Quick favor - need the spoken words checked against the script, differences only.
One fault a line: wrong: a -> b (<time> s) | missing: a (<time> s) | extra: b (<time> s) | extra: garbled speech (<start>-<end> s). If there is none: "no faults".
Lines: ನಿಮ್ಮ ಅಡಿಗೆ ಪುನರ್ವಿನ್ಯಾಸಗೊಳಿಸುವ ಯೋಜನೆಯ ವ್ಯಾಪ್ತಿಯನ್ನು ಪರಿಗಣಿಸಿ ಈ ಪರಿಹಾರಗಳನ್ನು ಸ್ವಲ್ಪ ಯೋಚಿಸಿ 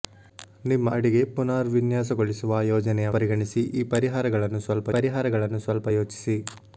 missing: ವ್ಯಾಪ್ತಿಯನ್ನು (3.1 s)
extra: ಪರಿಹಾರಗಳನ್ನು ಸ್ವಲ್ಪ (4.9 s)